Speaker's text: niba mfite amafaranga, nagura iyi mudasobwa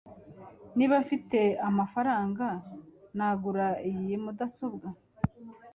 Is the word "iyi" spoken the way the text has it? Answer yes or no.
yes